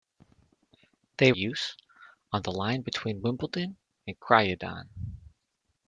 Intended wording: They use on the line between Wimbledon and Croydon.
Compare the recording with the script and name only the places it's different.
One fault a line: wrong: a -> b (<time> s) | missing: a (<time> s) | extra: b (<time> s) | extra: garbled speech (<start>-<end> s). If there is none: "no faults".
no faults